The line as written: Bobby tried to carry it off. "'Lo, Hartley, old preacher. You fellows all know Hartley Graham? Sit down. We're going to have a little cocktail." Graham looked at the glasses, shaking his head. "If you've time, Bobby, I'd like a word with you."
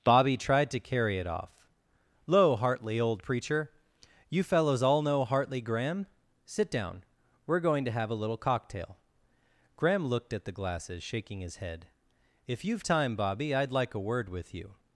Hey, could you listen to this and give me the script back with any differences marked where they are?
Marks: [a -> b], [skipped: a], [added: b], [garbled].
Bobby tried to carry it off. "'Lo, Hartley, old preacher. You fellows all know Hartley Graham? Sit down. We're going to have a little cocktail." Graham looked at the glasses, shaking his head. "If you've time, Bobby, I'd like a word with you."